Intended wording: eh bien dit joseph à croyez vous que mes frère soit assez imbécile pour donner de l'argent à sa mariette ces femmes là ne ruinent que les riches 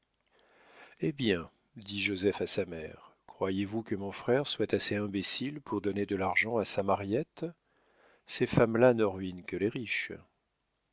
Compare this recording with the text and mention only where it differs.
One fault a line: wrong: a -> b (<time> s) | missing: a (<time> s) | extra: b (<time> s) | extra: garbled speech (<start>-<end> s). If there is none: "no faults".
extra: sa mère (2.5 s)
wrong: mes -> mon (3.9 s)